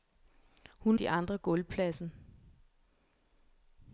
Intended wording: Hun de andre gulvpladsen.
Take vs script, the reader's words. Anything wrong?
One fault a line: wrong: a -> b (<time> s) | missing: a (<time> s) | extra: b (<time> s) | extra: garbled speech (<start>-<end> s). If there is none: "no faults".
no faults